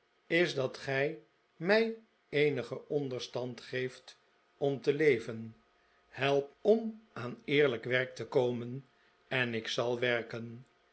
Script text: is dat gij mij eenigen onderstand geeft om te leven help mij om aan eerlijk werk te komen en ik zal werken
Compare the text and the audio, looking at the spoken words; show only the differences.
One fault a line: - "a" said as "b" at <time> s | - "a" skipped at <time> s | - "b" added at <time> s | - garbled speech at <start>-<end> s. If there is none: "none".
- "mij" skipped at 6.5 s